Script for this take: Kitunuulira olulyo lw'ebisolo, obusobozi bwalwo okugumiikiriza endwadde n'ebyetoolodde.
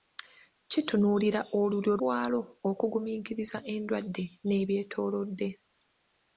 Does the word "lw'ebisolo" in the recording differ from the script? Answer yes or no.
yes